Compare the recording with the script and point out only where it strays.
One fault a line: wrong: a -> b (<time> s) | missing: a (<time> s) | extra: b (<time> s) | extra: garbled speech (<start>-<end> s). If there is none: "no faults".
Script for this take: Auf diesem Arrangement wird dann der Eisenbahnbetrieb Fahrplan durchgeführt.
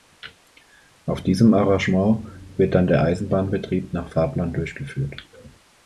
extra: nach (3.9 s)